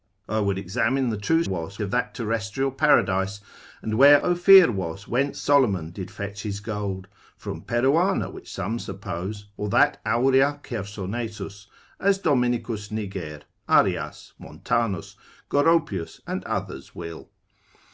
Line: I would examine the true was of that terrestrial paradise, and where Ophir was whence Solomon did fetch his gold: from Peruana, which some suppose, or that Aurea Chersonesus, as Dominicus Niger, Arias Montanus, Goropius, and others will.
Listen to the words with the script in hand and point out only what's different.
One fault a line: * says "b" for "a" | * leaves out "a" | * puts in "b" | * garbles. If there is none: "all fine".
all fine